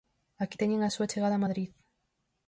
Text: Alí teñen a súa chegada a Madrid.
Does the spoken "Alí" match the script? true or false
false